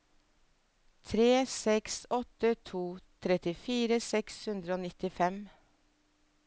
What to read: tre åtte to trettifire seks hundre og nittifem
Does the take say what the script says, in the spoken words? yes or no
no